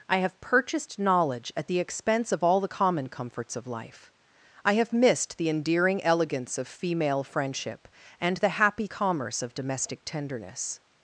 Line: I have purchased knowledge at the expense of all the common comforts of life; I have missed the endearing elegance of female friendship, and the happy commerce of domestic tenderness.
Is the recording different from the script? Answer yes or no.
no